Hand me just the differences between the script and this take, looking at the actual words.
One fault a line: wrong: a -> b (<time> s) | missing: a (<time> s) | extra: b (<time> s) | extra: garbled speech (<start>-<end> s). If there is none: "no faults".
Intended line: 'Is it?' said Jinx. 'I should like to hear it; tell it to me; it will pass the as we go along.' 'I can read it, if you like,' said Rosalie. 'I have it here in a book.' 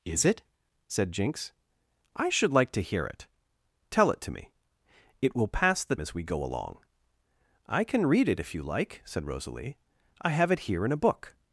no faults